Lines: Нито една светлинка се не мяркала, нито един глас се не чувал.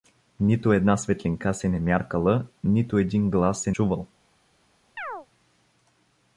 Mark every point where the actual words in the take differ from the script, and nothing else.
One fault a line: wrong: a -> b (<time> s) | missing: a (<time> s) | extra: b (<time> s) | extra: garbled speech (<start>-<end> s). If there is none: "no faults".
missing: не (3.7 s)